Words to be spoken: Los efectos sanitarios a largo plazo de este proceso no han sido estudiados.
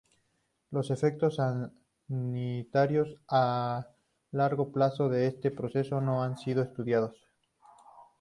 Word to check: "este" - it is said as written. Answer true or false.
true